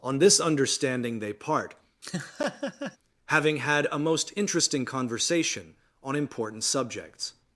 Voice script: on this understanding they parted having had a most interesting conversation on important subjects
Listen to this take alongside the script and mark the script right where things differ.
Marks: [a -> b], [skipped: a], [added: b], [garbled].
on this understanding they [parted -> part] having had a most interesting conversation on important subjects